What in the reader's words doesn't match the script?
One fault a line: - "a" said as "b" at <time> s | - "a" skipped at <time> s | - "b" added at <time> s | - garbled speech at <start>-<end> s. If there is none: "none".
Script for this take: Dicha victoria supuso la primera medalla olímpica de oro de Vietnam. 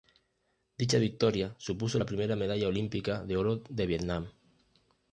none